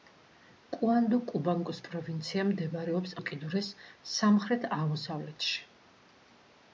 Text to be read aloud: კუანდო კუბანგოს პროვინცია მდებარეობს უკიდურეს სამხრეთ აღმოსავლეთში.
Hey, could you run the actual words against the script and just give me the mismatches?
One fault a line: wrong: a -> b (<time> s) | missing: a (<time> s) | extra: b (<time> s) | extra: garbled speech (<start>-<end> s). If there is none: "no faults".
no faults